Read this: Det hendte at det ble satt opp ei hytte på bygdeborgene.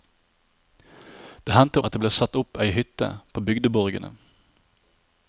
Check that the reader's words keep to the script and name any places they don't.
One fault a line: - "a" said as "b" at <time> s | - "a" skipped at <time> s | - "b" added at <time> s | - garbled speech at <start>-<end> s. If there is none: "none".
none